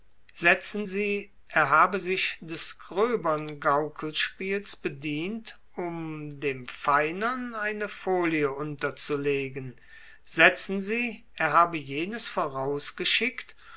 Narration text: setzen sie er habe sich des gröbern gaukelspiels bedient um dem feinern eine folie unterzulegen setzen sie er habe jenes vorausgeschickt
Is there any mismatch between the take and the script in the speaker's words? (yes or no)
no